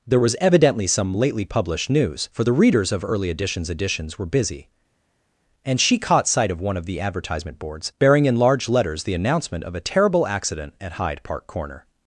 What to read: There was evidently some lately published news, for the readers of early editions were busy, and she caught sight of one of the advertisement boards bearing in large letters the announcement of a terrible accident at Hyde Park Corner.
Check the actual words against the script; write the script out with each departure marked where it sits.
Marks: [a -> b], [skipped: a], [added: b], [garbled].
There was evidently some lately published news, for the readers of early editions [added: editions] were busy, and she caught sight of one of the advertisement boards bearing in large letters the announcement of a terrible accident at Hyde Park Corner.